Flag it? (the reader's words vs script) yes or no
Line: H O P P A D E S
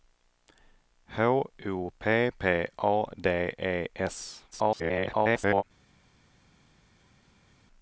yes